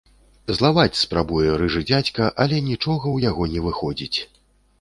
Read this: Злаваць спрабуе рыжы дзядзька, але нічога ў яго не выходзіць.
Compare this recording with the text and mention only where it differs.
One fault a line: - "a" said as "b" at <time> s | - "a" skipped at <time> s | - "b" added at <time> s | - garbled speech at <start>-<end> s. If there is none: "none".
none